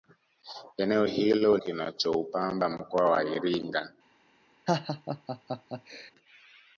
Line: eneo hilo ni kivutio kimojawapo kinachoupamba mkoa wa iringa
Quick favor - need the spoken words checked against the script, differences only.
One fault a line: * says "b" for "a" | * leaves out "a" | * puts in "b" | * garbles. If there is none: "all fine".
* leaves out "ni kivutio kimojawapo"